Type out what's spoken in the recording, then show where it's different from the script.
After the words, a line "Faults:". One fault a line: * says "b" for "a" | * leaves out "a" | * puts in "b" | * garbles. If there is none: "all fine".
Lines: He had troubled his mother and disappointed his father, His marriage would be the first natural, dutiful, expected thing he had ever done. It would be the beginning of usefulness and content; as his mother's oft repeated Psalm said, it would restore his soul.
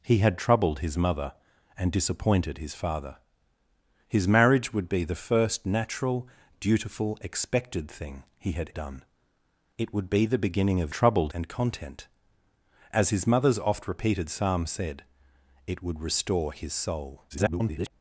He had troubled his mother and disappointed his father, His marriage would be the first natural, dutiful, expected thing he had done. It would be the beginning of troubled and content; as his mother's oft repeated Psalm said, it would restore his soul. [garbled]
Faults:
* leaves out "ever"
* says "troubled" for "usefulness"
* garbles